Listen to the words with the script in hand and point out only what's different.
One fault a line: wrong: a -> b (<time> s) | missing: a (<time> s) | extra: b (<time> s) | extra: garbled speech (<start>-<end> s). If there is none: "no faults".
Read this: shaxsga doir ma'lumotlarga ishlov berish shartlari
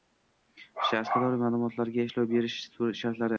no faults